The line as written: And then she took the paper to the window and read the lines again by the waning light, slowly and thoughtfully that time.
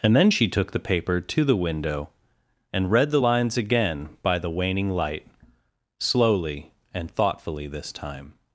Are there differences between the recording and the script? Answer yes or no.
yes